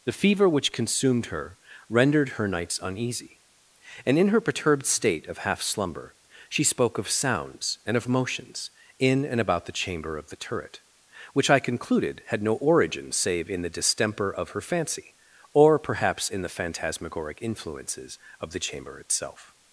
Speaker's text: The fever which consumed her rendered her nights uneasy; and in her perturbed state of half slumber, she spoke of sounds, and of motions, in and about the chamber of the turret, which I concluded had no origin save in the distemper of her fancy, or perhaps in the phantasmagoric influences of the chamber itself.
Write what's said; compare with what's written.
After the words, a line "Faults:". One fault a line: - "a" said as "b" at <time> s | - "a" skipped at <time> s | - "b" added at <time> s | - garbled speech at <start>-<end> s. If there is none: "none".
The fever which consumed her rendered her nights uneasy; and in her perturbed state of half slumber, she spoke of sounds, and of motions, in and about the chamber of the turret, which I concluded had no origin save in the distemper of her fancy, or perhaps in the phantasmagoric influences of the chamber itself.
Faults:
none